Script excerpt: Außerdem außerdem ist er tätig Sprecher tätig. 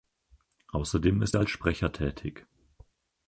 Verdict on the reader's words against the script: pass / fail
fail